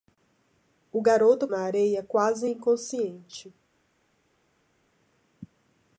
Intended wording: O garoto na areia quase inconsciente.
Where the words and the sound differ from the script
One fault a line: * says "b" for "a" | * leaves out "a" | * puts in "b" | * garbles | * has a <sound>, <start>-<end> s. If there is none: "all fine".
all fine